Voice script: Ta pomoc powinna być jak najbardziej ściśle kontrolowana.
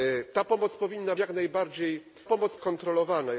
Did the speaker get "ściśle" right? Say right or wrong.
wrong